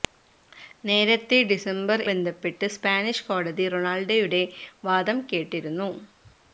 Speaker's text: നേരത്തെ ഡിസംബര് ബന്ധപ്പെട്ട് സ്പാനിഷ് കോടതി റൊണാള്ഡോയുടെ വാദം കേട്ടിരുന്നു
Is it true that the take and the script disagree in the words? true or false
false